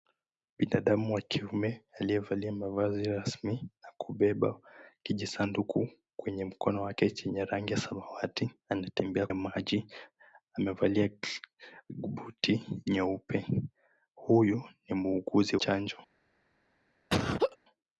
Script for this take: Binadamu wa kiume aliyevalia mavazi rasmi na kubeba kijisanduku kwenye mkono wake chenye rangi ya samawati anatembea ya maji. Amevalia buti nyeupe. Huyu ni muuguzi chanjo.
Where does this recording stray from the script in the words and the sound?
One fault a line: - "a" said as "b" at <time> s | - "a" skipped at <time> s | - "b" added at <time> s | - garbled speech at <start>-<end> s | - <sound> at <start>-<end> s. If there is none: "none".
- laugh at 17.1-17.6 s